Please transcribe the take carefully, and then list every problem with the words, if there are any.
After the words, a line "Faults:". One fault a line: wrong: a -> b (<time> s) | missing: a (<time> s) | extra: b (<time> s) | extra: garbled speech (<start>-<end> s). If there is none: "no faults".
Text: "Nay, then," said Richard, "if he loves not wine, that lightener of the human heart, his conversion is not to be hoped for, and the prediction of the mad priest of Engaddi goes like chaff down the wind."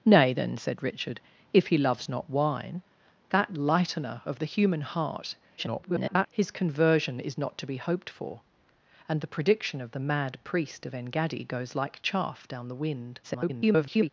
"Nay, then," said Richard, "if he loves not wine, that lightener of the human heart, [garbled] his conversion is not to be hoped for, and the prediction of the mad priest of Engaddi goes like chaff down the wind." [garbled]
Faults:
extra: garbled speech (5.6-6.3 s)
extra: garbled speech (13.2-14.1 s)